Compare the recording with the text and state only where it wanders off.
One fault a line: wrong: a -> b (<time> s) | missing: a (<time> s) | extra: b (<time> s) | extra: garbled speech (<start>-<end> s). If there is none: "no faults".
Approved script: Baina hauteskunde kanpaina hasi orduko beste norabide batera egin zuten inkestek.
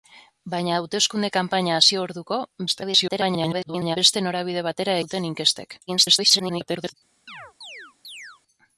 extra: garbled speech (2.7-4.0 s)
missing: egin (5.0 s)
extra: garbled speech (5.9-6.9 s)